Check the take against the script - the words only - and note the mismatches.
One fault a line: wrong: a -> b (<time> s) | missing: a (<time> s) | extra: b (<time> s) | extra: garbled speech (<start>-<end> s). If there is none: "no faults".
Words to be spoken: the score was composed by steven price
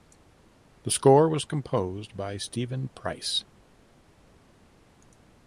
no faults